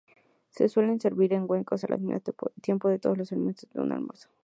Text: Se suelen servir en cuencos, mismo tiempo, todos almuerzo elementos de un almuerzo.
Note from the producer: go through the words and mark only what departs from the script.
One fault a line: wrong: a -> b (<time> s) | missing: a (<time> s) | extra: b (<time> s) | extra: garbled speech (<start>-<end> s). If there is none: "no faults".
extra: al (1.8 s)
wrong: almuerzo -> los (3.2 s)